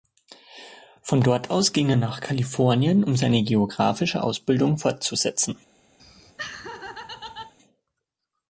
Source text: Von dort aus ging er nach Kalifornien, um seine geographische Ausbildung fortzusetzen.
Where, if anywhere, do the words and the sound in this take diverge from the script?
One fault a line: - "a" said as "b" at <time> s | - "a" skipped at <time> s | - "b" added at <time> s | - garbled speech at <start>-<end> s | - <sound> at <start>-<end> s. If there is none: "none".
- laugh at 6.0-7.5 s